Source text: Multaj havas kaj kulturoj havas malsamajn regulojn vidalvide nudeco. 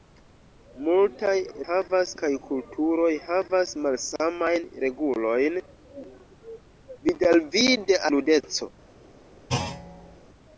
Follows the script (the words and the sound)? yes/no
no